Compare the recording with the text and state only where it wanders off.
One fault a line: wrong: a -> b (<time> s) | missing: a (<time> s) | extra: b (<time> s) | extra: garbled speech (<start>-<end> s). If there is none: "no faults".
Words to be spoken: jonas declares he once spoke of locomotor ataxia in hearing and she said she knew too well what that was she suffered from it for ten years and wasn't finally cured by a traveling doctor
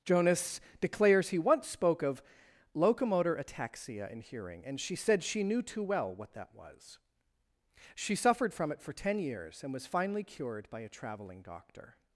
wrong: wasn't -> was (9.7 s)